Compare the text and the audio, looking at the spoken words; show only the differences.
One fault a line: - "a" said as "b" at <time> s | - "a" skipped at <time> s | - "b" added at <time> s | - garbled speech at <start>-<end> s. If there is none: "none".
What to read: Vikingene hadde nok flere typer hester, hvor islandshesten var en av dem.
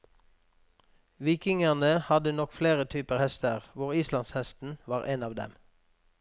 none